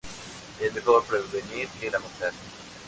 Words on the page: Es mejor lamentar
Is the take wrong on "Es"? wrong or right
right